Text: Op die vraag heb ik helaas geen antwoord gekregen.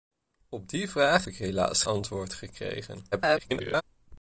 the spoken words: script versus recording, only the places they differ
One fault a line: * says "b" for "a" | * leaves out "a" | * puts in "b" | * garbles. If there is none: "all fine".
* leaves out "heb"
* leaves out "geen"
* garbles